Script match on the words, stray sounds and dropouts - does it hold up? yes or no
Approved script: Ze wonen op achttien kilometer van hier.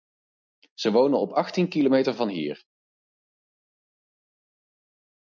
yes